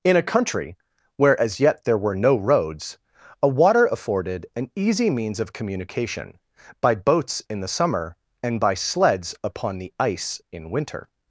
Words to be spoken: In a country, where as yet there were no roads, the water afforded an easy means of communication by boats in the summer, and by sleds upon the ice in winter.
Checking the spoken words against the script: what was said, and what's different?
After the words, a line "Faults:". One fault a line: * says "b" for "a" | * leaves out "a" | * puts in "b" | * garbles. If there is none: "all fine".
In a country, where as yet there were no roads, a water afforded an easy means of communication by boats in the summer, and by sleds upon the ice in winter.
Faults:
* says "a" for "the"